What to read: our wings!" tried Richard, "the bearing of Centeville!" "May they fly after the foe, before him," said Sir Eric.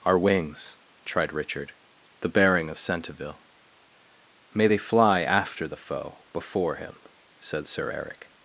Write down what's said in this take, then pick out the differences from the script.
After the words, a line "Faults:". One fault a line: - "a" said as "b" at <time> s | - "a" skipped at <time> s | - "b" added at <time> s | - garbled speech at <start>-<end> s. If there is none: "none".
our wings!" tried Richard, "the bearing of Centeville!" "May they fly after the foe, before him," said Sir Eric.
Faults:
none